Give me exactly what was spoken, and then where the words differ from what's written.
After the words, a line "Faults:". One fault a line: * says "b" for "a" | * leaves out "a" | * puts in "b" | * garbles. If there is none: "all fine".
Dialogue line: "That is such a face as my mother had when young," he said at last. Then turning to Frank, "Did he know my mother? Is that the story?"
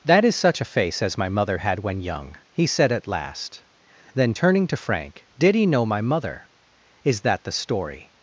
"That is such a face as my mother had when young," he said at last. Then turning to Frank, "Did he know my mother? Is that the story?"
Faults:
all fine